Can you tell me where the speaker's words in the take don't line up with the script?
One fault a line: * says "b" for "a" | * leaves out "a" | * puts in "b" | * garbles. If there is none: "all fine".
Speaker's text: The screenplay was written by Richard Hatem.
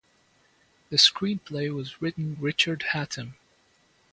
* leaves out "by"